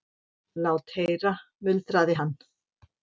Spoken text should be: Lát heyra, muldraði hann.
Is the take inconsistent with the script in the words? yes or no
no